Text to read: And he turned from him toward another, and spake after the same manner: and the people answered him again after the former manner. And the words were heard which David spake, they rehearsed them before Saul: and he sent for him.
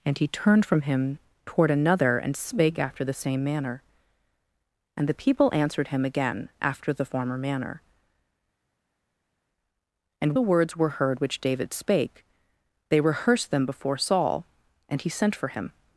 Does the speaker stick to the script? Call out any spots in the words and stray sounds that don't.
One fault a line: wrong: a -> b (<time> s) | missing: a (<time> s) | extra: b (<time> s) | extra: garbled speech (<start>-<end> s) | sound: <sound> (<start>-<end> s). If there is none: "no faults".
no faults